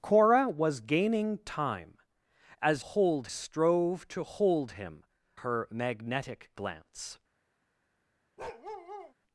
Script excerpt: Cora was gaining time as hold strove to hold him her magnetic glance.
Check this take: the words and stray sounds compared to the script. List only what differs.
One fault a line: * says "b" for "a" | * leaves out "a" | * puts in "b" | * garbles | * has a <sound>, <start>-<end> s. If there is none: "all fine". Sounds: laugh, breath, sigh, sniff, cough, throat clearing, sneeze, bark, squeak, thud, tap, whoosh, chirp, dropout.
* has a bark, 8.4-9.1 s